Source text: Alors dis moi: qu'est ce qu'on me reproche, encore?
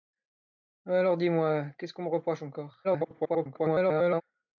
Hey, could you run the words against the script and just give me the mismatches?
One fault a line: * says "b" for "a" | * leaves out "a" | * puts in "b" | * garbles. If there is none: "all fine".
* garbles